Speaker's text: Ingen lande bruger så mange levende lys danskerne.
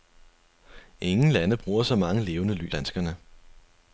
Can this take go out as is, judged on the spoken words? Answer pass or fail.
pass